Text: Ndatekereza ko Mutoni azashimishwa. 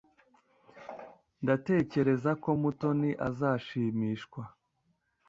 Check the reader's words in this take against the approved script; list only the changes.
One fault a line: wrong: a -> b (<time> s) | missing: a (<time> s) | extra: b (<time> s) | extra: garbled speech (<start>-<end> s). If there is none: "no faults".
no faults